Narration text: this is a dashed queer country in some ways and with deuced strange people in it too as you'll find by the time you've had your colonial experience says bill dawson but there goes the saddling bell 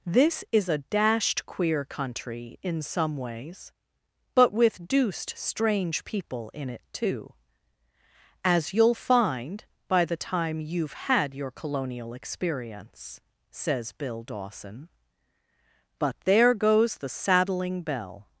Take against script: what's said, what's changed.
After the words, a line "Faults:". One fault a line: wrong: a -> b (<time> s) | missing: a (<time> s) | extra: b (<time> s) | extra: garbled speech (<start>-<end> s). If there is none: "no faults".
this is a dashed queer country in some ways but with deuced strange people in it too as you'll find by the time you've had your colonial experience says bill dawson but there goes the saddling bell
Faults:
wrong: and -> but (4.3 s)